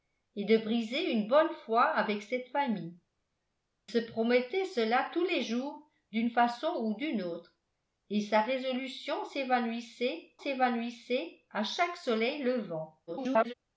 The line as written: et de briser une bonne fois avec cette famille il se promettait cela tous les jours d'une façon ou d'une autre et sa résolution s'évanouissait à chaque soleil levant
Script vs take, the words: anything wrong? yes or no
yes